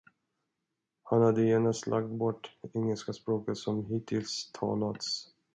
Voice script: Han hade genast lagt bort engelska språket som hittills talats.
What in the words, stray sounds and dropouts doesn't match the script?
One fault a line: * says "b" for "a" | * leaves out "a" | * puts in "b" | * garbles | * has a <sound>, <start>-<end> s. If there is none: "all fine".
all fine